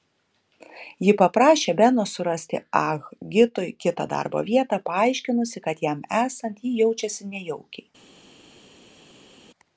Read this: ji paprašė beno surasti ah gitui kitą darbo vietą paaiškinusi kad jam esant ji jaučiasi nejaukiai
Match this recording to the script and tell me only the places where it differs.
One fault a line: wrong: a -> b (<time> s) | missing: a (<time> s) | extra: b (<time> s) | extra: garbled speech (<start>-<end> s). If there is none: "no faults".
no faults